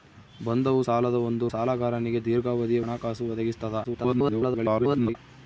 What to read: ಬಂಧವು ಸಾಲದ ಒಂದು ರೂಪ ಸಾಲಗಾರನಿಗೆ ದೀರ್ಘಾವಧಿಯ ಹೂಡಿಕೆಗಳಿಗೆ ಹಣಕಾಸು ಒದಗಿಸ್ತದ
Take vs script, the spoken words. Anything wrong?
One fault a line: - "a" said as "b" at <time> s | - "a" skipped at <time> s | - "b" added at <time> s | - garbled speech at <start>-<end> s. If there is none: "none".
- "ರೂಪ" skipped at 1.5 s
- "ಹೂಡಿಕೆಗಳಿಗೆ" skipped at 2.8 s
- garbled speech at 3.8-5.2 s